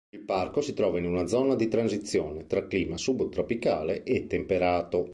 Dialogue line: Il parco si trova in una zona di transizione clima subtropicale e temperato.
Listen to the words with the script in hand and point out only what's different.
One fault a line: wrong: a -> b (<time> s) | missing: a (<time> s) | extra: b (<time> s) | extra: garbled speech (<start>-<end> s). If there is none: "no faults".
extra: tra (2.5 s)